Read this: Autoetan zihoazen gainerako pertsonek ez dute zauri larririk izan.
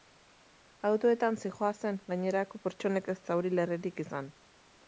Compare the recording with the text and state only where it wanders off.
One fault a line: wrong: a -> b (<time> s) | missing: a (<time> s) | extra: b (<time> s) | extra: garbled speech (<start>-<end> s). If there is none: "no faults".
missing: dute (3.2 s)